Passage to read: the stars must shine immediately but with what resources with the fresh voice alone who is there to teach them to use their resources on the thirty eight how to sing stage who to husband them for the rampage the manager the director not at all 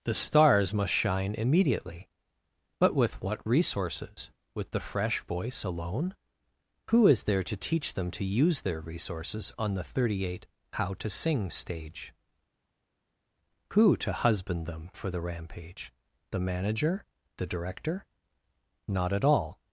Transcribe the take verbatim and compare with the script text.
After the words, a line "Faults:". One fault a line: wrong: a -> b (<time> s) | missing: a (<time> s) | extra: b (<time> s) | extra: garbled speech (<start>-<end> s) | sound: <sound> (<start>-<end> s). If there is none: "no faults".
the stars must shine immediately but with what resources with the fresh voice alone who is there to teach them to use their resources on the thirty eight how to sing stage who to husband them for the rampage the manager the director not at all
Faults:
no faults